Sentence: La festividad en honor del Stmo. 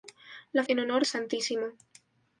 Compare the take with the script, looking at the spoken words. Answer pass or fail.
fail